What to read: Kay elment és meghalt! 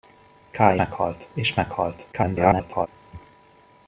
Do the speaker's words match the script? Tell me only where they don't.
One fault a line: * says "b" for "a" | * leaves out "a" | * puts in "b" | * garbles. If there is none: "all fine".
* says "meghalt" for "elment"
* garbles